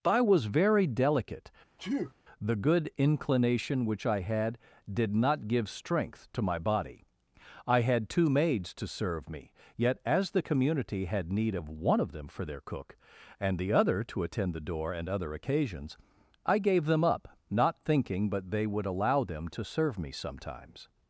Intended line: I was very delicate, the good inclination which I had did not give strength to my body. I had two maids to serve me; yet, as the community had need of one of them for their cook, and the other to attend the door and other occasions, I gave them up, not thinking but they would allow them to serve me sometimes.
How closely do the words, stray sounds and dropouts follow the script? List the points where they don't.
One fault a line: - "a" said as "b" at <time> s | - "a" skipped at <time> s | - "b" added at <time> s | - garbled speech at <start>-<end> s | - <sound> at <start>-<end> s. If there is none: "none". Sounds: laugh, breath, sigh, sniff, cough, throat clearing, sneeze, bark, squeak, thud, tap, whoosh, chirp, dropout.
- sneeze at 1.8-2.1 s